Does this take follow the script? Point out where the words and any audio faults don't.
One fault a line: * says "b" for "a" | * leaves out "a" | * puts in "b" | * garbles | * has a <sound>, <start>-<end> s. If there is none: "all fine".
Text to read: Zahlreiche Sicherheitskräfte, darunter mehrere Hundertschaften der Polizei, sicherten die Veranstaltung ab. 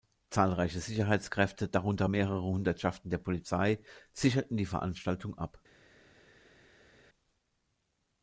all fine